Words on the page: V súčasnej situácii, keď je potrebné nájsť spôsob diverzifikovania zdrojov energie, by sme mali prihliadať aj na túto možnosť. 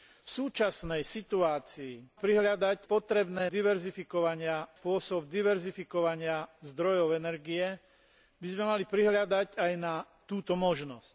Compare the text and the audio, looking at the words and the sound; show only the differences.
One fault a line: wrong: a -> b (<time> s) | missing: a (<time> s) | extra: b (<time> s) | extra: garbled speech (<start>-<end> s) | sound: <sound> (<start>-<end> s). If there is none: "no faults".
wrong: keď -> prihliadať (2.1 s)
wrong: nájsť -> diverzifikovania (3.5 s)